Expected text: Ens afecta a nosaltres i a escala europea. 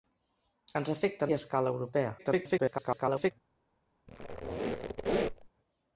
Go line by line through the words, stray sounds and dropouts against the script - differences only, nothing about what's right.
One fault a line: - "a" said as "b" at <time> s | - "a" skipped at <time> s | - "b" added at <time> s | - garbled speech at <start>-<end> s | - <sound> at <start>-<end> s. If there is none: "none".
- "nosaltres" skipped at 1.3 s
- garbled speech at 2.2-3.3 s
- squeak at 4.1-5.5 s